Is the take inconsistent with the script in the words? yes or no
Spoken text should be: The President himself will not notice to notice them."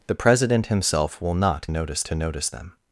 no